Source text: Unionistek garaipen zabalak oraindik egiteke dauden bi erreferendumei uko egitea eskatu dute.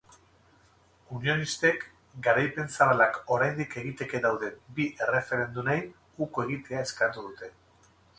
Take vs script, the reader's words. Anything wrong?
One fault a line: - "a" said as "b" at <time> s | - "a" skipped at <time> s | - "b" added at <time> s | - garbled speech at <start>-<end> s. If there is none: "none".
none